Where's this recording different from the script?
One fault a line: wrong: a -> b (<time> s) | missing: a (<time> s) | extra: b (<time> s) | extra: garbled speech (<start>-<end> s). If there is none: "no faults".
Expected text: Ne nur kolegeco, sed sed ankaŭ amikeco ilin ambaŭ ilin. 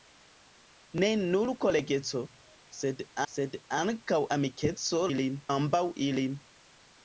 no faults